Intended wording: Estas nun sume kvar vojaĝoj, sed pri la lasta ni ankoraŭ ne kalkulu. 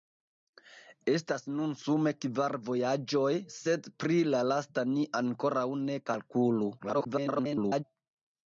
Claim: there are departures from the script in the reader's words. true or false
true